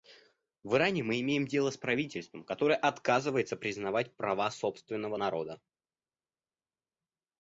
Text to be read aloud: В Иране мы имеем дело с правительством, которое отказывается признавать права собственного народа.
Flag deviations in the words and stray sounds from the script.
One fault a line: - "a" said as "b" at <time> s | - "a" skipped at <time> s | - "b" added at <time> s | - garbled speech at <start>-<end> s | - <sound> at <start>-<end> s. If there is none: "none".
none